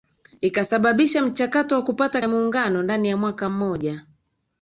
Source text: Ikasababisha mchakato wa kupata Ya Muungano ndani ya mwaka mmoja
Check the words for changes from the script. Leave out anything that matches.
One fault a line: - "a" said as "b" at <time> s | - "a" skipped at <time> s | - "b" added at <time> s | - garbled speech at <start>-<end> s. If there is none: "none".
none